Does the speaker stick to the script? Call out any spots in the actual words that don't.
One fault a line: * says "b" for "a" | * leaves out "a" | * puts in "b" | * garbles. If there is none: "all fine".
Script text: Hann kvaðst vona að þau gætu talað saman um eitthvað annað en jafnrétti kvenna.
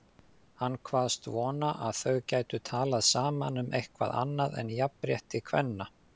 all fine